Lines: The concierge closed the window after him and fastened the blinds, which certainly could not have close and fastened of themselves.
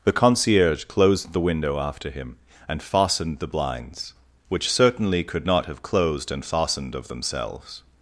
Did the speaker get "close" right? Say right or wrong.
wrong